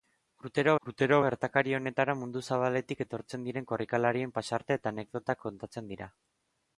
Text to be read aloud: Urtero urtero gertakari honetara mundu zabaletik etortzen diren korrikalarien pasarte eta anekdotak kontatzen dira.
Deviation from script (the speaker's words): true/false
false